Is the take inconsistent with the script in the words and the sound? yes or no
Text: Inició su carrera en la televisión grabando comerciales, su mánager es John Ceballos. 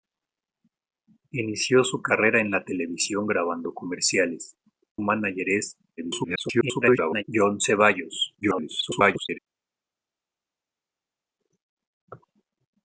yes